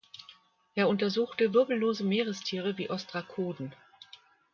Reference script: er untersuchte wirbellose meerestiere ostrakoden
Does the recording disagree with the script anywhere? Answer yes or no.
yes